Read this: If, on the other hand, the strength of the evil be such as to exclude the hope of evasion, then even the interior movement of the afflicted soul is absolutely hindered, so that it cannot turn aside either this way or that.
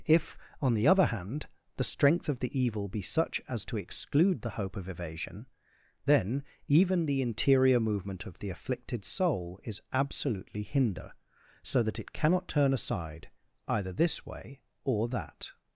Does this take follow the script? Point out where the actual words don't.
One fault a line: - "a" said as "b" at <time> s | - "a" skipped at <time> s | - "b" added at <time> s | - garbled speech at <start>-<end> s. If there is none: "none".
- "hindered" said as "hinder" at 10.6 s